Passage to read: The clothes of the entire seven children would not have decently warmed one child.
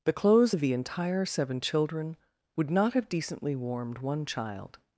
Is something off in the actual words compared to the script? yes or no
no